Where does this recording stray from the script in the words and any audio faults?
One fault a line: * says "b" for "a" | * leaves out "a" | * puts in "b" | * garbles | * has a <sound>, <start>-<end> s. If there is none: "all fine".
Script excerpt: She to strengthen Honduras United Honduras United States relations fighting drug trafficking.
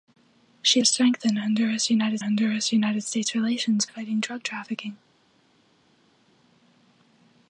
all fine